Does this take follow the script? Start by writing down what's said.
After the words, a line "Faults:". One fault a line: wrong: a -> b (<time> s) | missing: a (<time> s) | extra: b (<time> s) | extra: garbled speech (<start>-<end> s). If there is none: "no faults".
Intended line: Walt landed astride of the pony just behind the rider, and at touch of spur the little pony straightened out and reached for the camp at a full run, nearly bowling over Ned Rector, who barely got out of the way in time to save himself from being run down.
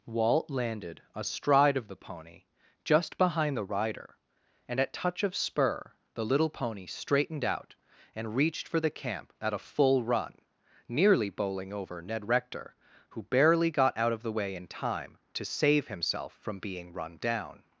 Walt landed astride of the pony just behind the rider, and at touch of spur the little pony straightened out and reached for the camp at a full run, nearly bowling over Ned Rector, who barely got out of the way in time to save himself from being run down.
Faults:
no faults